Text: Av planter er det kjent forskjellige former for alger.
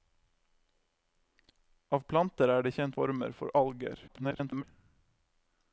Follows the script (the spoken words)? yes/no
no